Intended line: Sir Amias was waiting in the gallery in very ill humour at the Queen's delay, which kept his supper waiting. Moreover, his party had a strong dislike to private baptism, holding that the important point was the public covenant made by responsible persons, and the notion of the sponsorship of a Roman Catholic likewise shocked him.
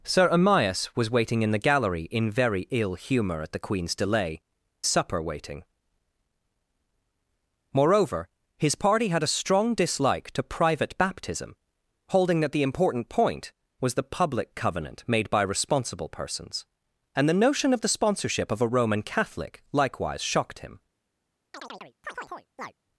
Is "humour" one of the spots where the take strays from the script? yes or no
no